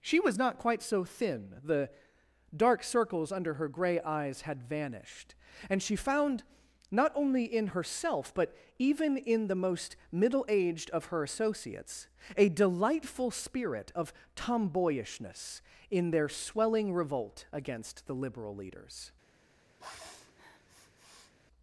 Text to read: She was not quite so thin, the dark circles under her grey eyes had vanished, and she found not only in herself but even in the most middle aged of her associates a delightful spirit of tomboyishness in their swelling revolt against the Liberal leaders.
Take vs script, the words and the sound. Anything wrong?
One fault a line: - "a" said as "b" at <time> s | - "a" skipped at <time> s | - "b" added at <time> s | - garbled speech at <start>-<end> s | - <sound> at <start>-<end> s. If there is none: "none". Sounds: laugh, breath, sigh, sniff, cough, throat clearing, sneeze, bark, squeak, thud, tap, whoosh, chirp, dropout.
- sniff at 19.8-21.3 s